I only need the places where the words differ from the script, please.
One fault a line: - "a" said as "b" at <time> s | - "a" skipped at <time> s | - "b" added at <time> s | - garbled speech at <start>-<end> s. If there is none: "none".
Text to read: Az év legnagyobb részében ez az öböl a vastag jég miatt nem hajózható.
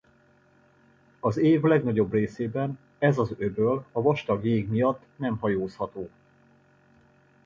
none